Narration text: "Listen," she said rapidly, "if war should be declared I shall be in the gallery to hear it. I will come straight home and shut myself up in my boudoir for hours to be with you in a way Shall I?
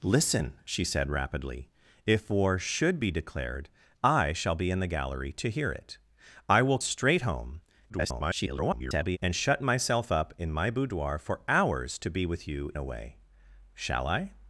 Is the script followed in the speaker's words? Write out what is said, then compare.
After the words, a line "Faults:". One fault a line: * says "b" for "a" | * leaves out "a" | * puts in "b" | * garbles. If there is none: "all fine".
"Listen," she said rapidly, "if war should be declared I shall be in the gallery to hear it. I will straight home [garbled] and shut myself up in my boudoir for hours to be with you a way Shall I?
Faults:
* leaves out "come"
* garbles
* leaves out "in"